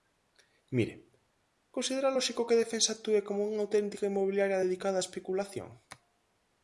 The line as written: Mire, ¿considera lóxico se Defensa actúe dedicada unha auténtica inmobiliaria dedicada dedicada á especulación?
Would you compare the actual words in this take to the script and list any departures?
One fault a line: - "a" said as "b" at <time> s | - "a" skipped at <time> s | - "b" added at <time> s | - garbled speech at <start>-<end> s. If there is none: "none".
- "se" said as "que" at 2.5 s
- "dedicada" said as "como" at 3.3 s
- "dedicada" skipped at 5.0 s